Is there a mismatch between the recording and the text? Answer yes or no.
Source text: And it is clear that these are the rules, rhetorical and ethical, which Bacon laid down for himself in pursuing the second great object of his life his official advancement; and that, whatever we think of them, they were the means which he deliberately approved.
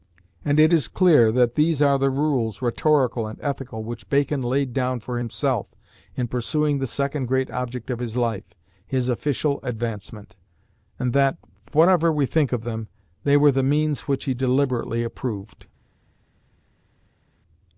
no